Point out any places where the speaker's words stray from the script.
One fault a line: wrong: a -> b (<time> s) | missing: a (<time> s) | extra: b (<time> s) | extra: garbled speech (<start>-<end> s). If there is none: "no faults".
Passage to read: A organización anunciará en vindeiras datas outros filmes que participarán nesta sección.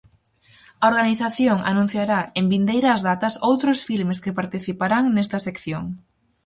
no faults